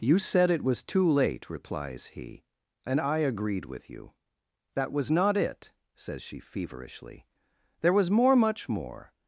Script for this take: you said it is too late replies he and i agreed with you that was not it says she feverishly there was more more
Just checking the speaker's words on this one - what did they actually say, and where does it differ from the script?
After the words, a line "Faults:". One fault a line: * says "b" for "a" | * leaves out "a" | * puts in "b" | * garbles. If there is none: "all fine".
you said it was too late replies he and i agreed with you that was not it says she feverishly there was more much more
Faults:
* says "was" for "is"
* puts in "much"